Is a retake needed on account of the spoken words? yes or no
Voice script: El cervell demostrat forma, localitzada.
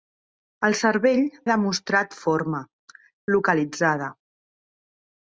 no